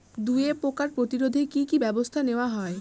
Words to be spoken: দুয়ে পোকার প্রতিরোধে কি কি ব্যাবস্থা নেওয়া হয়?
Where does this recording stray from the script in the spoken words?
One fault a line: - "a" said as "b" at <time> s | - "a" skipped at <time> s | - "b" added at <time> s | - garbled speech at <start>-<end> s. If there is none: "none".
none